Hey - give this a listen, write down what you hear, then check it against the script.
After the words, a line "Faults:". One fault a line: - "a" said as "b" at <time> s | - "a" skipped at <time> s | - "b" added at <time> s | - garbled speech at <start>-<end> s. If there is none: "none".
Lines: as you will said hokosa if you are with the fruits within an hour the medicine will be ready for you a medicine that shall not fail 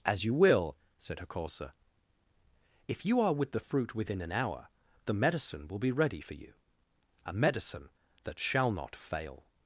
as you will said hokosa if you are with the fruit within an hour the medicine will be ready for you a medicine that shall not fail
Faults:
- "fruits" said as "fruit" at 3.6 s